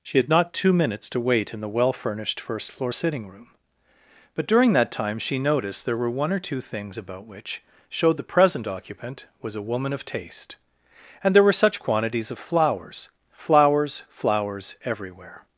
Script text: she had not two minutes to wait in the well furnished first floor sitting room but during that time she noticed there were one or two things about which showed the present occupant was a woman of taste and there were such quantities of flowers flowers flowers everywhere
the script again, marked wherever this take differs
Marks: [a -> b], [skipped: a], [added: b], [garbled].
she had not two minutes to wait in the well furnished first floor sitting room but during that time she noticed there were one or two things about which showed the present occupant was a woman of taste and there were such quantities of flowers flowers flowers everywhere